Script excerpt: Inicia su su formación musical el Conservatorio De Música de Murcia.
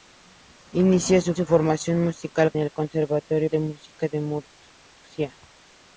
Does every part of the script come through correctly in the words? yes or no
yes